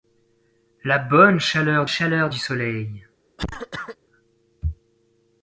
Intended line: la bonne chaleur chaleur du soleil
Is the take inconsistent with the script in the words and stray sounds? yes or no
yes